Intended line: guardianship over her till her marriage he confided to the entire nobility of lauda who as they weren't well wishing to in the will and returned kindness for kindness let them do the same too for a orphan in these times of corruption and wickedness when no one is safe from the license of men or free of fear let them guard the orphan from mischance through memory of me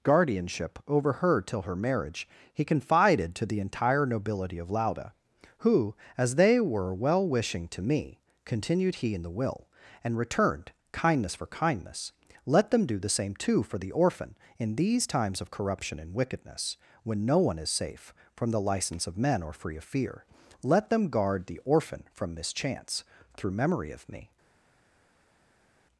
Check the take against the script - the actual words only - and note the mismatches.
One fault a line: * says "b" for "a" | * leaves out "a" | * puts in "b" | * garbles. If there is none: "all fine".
* says "were" for "weren't"
* puts in "me continued he"
* says "the" for "a"